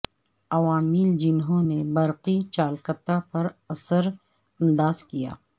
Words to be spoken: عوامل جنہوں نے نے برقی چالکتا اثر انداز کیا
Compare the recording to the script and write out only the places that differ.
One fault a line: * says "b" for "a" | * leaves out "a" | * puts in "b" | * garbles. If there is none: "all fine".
* leaves out "نے"
* puts in "پر"